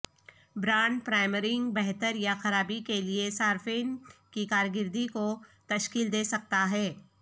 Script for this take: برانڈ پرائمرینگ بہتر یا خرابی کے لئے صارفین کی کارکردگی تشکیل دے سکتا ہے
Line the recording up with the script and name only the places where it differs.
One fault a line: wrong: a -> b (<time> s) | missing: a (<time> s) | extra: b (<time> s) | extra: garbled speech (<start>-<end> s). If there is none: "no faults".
extra: کو (5.1 s)